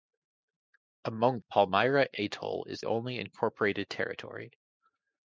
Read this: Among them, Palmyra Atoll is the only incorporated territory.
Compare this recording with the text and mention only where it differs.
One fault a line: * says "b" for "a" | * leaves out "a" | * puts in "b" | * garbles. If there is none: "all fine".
* leaves out "them"
* leaves out "the"